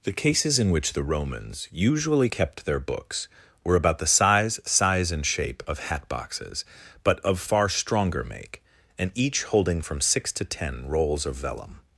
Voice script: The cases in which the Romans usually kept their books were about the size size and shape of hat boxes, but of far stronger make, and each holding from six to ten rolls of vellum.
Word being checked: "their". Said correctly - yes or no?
yes